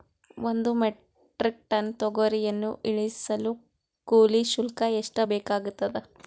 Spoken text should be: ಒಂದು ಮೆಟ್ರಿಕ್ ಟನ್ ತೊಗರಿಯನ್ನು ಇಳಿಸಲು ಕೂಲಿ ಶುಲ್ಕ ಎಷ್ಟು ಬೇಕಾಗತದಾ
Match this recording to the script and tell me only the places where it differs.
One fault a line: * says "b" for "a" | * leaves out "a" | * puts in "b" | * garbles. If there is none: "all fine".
all fine